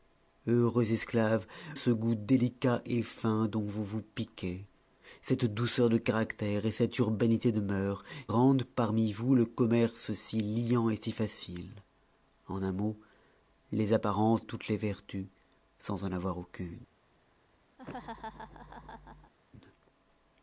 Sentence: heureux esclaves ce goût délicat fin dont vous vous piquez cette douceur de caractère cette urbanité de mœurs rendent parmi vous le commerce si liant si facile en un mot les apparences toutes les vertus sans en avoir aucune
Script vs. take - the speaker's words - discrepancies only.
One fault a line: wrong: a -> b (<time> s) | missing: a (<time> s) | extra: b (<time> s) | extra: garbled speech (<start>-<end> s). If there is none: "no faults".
no faults